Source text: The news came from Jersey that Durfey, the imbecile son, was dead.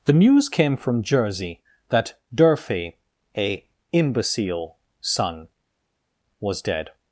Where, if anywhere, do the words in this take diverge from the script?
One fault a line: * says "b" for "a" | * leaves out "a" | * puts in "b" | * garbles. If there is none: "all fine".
* says "a" for "the"